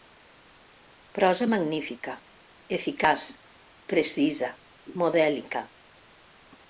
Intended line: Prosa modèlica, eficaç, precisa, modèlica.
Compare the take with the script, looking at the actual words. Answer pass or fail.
fail